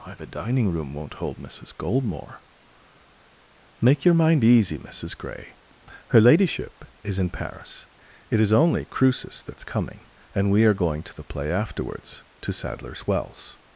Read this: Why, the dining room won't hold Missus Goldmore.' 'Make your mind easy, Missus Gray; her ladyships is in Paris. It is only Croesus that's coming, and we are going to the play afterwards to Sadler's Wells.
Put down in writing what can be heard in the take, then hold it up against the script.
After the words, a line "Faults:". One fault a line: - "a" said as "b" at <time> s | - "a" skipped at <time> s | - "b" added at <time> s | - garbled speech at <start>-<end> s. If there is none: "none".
Why, the dining room won't hold Missus Goldmore.' 'Make your mind easy, Missus Gray; her ladyship is in Paris. It is only Croesus that's coming, and we are going to the play afterwards to Sadler's Wells.
Faults:
- "ladyships" said as "ladyship" at 6.2 s